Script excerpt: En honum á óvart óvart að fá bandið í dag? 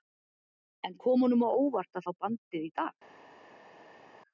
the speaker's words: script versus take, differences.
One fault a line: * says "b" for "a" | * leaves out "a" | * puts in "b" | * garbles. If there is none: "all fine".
* puts in "kom"
* leaves out "óvart"